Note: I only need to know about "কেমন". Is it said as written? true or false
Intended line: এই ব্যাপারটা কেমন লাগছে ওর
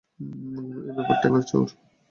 false